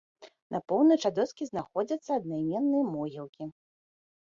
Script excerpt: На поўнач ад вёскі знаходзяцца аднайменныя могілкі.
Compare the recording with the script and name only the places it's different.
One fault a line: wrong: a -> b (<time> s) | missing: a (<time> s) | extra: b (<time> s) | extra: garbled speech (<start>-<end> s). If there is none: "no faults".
no faults